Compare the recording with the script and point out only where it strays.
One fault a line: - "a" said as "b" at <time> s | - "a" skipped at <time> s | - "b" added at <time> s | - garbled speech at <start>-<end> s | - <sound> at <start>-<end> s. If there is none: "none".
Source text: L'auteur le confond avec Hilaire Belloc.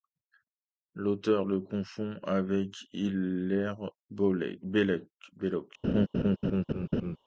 - laugh at 5.8-7.2 s